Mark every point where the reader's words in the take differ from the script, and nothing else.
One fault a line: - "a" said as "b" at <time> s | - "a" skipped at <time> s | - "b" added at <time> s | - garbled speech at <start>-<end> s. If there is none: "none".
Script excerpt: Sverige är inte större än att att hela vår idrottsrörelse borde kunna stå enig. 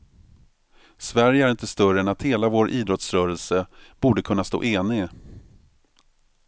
- "att" skipped at 2.2 s